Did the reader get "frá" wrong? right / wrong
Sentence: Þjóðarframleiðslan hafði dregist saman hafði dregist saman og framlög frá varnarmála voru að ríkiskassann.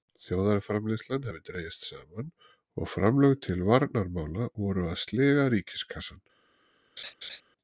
wrong